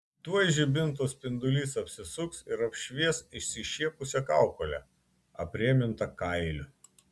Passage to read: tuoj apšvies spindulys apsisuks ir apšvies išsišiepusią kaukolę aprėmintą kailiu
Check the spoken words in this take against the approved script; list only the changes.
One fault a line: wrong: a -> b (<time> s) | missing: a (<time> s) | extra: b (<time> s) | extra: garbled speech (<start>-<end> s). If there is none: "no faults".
wrong: apšvies -> žibinto (0.5 s)